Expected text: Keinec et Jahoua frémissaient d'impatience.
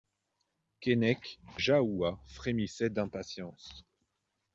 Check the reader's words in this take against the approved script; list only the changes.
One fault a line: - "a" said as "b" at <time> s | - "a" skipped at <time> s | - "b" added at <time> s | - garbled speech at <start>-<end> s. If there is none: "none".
- "et" skipped at 1.4 s